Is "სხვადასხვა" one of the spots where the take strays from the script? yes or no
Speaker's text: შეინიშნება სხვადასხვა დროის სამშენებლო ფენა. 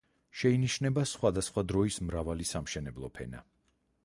no